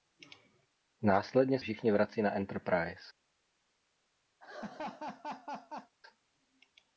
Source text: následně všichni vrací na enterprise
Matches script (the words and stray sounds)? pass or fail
fail